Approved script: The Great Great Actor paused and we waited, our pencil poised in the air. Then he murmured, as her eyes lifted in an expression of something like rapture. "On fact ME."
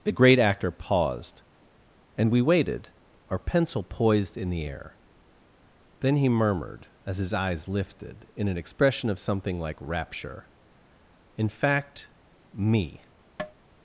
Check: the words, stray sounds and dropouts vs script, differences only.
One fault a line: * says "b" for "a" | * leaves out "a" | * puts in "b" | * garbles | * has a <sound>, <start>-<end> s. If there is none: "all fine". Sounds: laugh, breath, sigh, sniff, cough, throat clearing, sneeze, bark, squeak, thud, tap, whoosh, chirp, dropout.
* leaves out "Great"
* says "his" for "her"
* says "In" for "On"
* has a tap, 13.4-13.5 s